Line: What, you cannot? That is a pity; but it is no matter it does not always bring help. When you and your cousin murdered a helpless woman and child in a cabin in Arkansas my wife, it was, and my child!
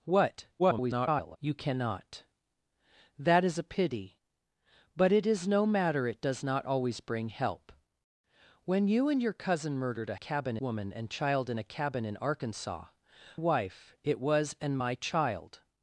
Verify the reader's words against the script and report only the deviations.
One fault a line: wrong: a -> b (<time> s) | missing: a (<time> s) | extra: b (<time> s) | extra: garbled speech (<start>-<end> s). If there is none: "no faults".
extra: garbled speech (0.6-1.4 s)
wrong: helpless -> cabin (10.1 s)
missing: my (12.9 s)